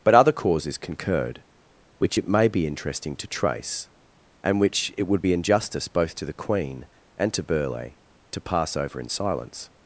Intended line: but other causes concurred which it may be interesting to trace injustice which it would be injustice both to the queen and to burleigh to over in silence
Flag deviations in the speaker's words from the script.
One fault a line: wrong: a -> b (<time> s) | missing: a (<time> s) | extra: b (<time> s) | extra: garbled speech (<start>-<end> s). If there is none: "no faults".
wrong: injustice -> and (4.4 s)
extra: pass (8.4 s)